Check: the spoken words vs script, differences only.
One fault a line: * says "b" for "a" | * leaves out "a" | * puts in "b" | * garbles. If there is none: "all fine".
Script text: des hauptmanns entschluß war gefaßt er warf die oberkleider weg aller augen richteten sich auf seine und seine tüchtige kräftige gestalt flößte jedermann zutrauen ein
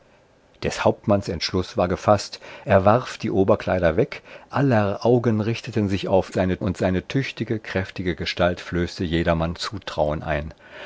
all fine